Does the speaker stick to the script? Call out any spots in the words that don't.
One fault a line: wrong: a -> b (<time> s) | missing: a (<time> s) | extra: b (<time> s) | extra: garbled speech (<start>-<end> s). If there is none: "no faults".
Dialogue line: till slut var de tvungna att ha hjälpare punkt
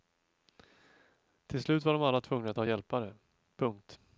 extra: alla (2.0 s)